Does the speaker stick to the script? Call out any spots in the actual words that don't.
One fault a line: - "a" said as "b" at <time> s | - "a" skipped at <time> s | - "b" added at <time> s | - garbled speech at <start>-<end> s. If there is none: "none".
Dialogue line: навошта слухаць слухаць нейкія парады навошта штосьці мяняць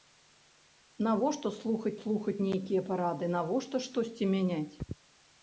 none